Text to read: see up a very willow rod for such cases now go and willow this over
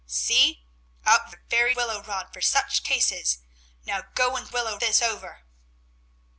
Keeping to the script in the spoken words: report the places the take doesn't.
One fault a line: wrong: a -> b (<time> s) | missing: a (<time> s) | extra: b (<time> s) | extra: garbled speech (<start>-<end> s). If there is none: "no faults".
no faults